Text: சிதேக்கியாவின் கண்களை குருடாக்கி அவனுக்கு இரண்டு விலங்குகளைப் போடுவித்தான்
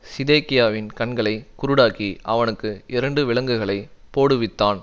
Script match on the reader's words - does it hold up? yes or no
yes